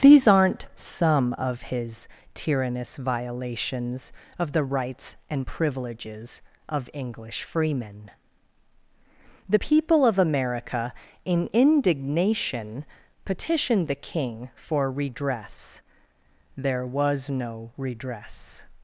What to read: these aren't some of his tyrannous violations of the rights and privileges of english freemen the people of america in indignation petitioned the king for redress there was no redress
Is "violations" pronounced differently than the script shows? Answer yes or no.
no